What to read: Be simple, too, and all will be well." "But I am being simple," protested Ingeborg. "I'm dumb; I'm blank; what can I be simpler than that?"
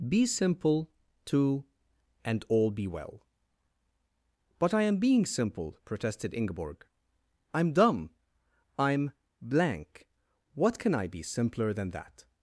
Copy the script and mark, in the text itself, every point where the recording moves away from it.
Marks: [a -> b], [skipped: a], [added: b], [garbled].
Be simple, too, and all [skipped: will] be well." "But I am being simple," protested Ingeborg. "I'm dumb; I'm blank; what can I be simpler than that?"